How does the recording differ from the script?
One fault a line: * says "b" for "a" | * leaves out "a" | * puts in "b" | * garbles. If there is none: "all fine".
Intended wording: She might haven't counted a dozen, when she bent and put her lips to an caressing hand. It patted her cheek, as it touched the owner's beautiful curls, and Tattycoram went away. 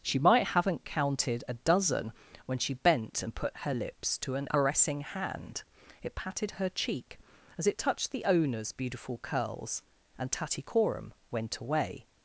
all fine